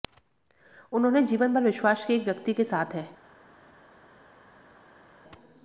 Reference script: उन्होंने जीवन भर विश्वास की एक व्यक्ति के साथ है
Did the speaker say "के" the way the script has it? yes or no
yes